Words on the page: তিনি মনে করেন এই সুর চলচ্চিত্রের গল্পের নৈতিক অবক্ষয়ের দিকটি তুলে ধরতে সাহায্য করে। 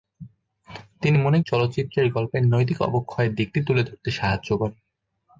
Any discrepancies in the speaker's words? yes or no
yes